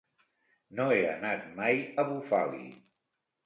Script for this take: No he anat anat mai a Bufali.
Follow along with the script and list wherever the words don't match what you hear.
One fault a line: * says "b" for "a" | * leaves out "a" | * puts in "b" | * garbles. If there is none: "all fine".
* leaves out "anat"